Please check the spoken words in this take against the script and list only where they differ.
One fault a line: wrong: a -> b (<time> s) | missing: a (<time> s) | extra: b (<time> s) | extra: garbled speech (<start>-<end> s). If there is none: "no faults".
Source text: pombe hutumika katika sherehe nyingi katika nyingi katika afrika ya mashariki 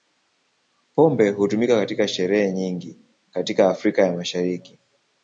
missing: nyingi katika (3.7 s)